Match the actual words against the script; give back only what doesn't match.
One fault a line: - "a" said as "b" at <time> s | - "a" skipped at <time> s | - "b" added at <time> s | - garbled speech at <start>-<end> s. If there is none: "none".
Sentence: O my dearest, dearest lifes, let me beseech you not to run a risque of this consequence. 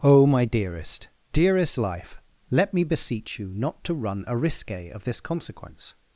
- "lifes" said as "life" at 1.8 s